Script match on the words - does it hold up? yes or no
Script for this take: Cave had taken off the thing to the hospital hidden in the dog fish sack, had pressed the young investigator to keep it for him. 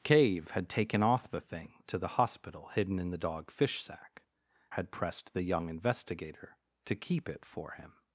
yes